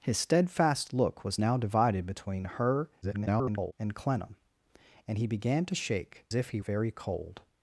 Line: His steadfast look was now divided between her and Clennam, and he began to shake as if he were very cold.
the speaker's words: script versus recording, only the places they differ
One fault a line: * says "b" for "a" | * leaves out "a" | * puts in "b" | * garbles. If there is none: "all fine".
* garbles
* leaves out "as"
* leaves out "were"